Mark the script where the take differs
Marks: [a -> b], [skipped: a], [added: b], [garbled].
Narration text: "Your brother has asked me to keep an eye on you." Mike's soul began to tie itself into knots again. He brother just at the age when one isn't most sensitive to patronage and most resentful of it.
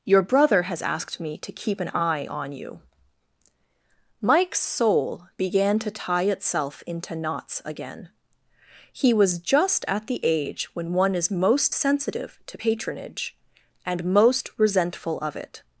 "Your brother has asked me to keep an eye on you." Mike's soul began to tie itself into knots again. He [brother -> was] just at the age when one [isn't -> is] most sensitive to patronage and most resentful of it.